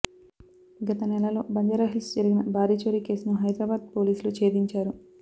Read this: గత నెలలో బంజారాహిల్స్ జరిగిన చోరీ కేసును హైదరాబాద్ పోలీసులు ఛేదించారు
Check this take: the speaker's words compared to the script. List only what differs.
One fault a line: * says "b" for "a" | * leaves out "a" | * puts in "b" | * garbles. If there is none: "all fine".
* puts in "భారీ"